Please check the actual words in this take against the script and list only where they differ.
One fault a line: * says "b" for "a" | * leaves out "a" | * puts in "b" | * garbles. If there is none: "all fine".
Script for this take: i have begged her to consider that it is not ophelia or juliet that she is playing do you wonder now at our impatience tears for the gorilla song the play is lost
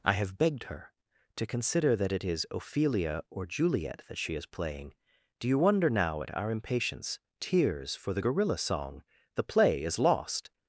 * leaves out "not"